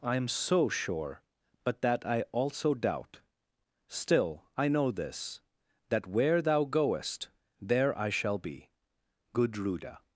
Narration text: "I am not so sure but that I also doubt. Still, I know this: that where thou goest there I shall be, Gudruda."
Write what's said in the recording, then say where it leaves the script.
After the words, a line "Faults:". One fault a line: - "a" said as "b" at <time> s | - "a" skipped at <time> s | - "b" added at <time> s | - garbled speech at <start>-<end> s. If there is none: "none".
"I am so sure but that I also doubt. Still, I know this: that where thou goest there I shall be, Gudruda."
Faults:
- "not" skipped at 0.3 s